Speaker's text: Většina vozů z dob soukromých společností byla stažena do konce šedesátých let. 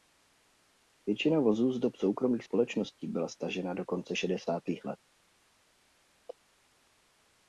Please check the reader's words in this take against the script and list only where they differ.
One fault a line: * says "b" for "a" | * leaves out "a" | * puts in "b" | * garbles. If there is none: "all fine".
all fine